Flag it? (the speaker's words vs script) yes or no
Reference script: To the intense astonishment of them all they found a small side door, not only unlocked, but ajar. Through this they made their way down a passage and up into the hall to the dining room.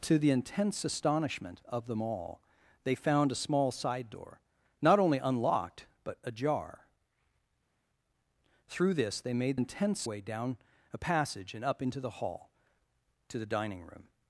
yes